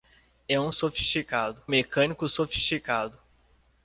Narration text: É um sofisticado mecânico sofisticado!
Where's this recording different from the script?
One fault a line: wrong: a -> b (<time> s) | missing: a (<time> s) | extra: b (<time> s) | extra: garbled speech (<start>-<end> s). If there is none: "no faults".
no faults